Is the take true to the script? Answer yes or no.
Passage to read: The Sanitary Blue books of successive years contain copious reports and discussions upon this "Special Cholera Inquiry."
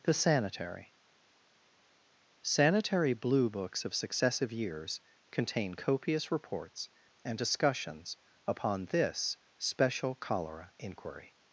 no